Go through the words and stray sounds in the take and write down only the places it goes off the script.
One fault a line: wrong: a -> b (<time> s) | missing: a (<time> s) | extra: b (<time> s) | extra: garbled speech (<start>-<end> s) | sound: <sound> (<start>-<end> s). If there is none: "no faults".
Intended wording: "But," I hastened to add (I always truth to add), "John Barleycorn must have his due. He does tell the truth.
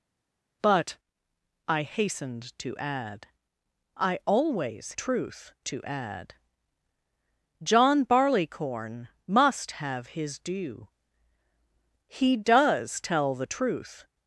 no faults